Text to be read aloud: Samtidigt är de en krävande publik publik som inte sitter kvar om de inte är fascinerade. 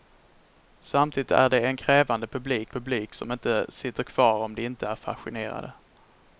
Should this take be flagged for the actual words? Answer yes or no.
no